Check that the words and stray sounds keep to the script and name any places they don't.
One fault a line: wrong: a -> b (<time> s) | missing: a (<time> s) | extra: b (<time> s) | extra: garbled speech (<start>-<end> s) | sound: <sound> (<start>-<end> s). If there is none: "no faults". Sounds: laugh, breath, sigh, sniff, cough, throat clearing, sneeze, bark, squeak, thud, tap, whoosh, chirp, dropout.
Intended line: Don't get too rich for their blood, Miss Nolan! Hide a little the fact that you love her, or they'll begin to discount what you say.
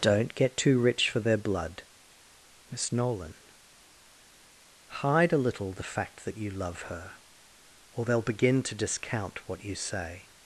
no faults